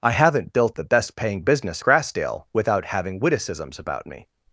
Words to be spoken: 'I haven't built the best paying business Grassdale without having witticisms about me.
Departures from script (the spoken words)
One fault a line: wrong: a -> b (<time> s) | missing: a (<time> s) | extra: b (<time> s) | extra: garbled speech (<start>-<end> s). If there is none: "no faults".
no faults